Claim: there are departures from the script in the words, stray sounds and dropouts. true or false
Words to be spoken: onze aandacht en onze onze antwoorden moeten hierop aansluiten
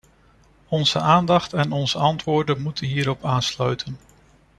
true